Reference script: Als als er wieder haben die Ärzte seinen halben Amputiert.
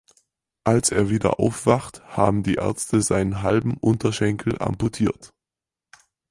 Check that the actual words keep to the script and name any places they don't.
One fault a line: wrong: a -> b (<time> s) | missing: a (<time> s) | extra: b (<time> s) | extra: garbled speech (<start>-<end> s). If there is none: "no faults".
missing: als (0.9 s)
extra: aufwacht (1.4 s)
extra: Unterschenkel (3.8 s)